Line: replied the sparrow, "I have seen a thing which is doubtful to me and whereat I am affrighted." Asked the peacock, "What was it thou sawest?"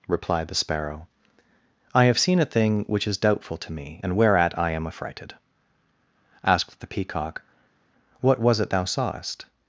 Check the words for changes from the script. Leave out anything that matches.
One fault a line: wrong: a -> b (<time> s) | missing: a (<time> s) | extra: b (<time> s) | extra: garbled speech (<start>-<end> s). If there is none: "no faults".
no faults